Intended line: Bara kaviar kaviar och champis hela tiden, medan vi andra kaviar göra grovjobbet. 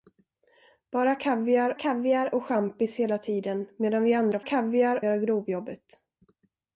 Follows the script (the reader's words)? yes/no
yes